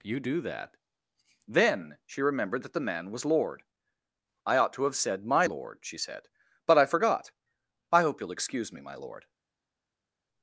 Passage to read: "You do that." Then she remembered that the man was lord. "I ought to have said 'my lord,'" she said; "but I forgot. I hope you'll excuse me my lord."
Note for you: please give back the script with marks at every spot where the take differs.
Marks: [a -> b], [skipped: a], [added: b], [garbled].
"You do that." Then she remembered that the man was lord. "I ought to have said 'my lord,'" she said; "but I forgot. I hope you'll excuse me my lord."